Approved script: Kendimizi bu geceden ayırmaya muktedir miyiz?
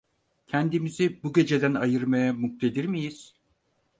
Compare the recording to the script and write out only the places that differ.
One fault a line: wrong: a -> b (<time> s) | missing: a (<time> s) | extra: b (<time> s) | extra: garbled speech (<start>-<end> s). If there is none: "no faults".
no faults